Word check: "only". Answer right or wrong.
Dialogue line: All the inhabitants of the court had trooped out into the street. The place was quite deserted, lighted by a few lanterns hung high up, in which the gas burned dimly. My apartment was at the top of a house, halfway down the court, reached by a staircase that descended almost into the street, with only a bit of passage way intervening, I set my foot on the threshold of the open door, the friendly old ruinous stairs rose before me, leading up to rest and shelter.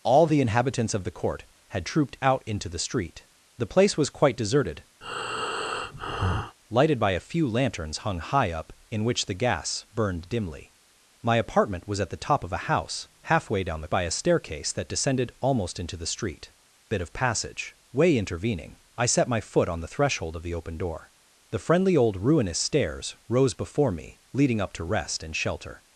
wrong